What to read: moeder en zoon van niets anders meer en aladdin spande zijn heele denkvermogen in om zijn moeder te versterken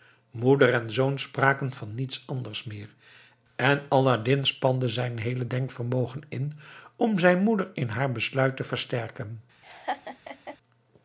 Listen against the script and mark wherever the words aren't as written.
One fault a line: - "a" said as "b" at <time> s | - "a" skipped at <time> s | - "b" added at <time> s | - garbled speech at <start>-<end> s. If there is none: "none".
- "spraken" added at 1.2 s
- "in haar besluit" added at 7.7 s